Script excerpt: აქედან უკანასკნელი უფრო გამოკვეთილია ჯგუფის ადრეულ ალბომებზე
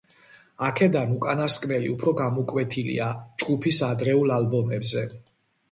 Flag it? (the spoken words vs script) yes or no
no